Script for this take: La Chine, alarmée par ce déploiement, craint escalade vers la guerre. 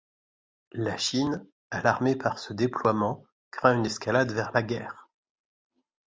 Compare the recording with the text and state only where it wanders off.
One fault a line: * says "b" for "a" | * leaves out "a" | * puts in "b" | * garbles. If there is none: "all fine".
* puts in "une"